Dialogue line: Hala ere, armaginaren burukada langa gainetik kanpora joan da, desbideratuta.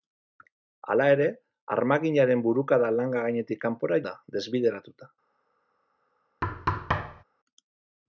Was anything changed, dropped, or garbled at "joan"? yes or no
yes